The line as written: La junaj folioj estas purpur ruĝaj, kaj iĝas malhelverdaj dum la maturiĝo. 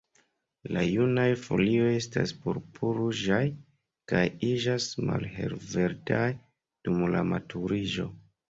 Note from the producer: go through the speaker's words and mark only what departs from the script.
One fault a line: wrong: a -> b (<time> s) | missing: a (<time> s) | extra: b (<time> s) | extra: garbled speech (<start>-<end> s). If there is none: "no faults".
no faults